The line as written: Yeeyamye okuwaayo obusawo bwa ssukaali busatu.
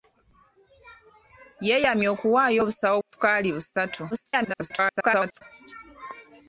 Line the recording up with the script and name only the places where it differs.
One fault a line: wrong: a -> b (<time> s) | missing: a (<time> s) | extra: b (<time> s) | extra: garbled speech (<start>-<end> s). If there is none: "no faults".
missing: bwa (3.0 s)
extra: garbled speech (4.1-5.4 s)